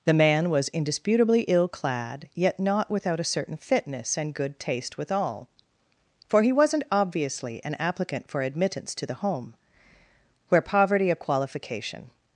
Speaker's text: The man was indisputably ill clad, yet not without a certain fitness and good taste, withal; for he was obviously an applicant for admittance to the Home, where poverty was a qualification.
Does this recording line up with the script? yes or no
no